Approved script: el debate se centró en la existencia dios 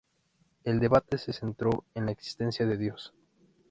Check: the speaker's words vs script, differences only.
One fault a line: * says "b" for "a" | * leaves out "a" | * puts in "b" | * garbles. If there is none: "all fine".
* puts in "de"